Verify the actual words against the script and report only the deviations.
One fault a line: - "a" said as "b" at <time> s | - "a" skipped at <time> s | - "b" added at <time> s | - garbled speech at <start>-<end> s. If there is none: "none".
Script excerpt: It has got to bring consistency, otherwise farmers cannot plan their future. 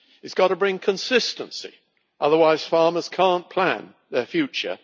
none